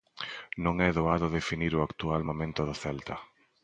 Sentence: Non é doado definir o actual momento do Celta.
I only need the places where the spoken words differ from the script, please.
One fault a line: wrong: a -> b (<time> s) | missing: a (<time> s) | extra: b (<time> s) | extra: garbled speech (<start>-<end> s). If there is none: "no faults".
no faults